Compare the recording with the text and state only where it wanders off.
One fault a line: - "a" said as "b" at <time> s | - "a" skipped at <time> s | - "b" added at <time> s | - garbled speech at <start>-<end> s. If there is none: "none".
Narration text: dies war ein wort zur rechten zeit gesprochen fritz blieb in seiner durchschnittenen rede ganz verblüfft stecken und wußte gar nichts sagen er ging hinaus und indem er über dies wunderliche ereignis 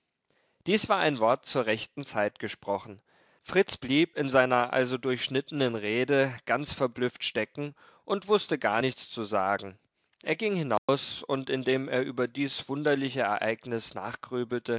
- "also" added at 4.7 s
- "zu" added at 9.1 s